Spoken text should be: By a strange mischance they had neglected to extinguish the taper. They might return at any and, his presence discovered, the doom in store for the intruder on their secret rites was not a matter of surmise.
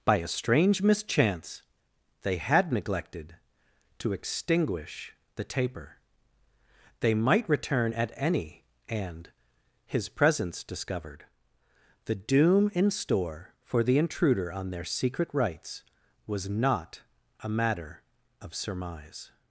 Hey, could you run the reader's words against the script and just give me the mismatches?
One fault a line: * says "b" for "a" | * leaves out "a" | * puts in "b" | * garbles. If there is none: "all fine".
all fine